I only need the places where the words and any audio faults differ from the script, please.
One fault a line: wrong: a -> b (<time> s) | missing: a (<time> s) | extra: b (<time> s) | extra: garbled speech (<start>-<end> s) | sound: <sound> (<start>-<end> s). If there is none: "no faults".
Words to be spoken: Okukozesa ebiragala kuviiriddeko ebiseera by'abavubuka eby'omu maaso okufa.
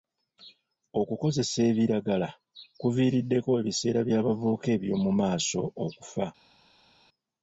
no faults